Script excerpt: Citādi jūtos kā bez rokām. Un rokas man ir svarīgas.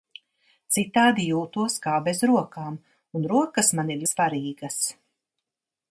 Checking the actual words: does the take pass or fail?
pass